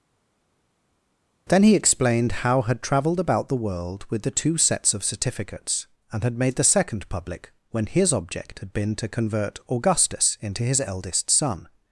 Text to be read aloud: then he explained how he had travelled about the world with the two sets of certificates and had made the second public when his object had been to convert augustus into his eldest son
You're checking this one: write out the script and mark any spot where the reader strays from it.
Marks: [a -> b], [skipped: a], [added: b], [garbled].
then he explained how [skipped: he] had travelled about the world with the two sets of certificates and had made the second public when his object had been to convert augustus into his eldest son